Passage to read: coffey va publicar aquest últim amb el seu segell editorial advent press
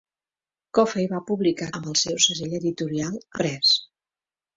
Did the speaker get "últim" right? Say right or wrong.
wrong